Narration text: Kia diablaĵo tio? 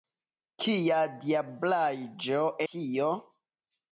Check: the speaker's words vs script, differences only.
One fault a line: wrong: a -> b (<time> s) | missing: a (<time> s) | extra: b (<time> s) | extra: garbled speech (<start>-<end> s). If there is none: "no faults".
no faults